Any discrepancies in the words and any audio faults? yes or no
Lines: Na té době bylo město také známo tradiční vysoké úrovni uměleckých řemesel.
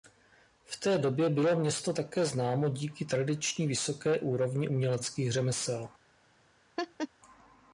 yes